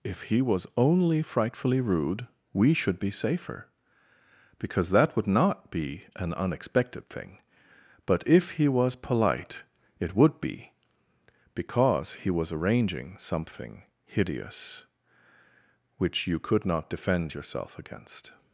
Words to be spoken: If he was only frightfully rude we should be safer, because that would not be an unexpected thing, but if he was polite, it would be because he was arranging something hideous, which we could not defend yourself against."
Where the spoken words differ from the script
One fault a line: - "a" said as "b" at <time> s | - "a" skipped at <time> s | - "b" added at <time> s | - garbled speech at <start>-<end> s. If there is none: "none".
- "we" said as "you" at 16.3 s